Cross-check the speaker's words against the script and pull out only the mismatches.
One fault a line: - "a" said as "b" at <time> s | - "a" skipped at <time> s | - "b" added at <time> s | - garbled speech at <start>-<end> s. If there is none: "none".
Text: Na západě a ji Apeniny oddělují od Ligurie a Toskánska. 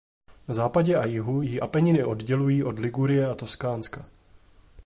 - "jihu" added at 1.1 s